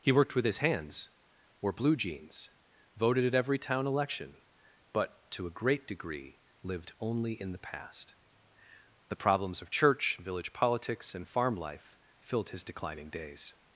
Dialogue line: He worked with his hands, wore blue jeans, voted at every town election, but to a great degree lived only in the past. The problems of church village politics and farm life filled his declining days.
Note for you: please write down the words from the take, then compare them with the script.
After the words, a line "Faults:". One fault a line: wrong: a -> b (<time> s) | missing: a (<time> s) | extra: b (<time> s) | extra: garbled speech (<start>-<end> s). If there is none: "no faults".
He worked with his hands, wore blue jeans, voted at every town election, but to a great degree lived only in the past. The problems of church village politics and farm life filled his declining days.
Faults:
no faults